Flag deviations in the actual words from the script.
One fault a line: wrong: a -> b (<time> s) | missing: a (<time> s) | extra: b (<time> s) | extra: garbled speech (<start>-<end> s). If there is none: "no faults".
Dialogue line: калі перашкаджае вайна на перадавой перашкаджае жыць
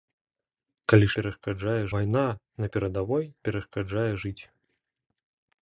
no faults